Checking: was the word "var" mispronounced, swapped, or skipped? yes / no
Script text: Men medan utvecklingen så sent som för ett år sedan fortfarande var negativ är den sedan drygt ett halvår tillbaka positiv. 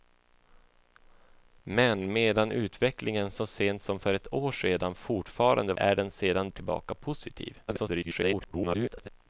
yes